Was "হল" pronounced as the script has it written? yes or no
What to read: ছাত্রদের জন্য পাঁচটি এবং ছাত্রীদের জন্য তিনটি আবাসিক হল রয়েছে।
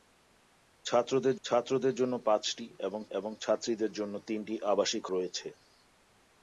no